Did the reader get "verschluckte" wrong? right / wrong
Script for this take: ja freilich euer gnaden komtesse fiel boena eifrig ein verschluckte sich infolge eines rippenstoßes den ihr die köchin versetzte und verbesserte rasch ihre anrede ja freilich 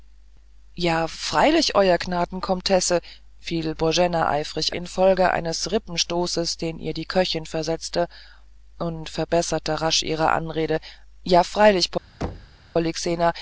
wrong